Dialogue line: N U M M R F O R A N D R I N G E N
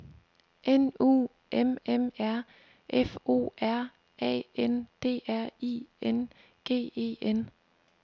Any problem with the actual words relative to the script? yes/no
no